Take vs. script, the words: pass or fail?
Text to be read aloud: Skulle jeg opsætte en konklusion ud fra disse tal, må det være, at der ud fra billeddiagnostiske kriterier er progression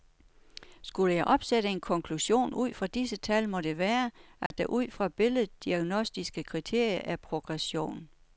pass